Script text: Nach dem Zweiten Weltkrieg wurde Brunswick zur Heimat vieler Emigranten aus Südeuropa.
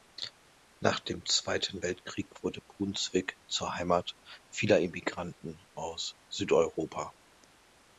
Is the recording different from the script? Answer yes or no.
no